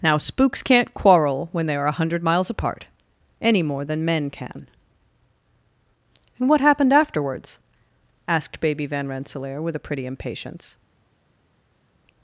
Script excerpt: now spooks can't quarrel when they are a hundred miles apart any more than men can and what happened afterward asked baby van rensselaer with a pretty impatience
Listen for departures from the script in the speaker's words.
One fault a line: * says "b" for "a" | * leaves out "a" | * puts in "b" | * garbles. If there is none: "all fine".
* says "afterwards" for "afterward"